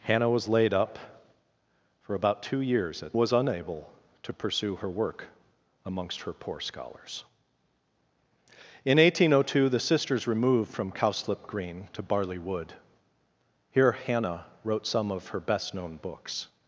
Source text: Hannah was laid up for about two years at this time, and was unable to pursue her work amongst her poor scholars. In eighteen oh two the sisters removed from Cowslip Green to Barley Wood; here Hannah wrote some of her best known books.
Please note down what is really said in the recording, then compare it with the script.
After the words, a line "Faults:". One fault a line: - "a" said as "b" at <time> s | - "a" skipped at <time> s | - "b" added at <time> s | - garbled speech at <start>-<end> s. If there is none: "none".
Hannah was laid up for about two years at was unable to pursue her work amongst her poor scholars. In eighteen oh two the sisters removed from Cowslip Green to Barley Wood; here Hannah wrote some of her best known books.
Faults:
- "this time and" skipped at 3.2 s